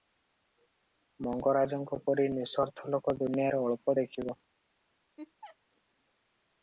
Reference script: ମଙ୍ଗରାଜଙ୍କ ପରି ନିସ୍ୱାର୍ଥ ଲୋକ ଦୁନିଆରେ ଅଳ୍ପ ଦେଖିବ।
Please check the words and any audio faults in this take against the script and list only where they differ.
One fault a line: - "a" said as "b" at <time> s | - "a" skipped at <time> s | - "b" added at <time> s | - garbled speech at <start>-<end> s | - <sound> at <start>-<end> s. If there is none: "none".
- laugh at 5.2-5.6 s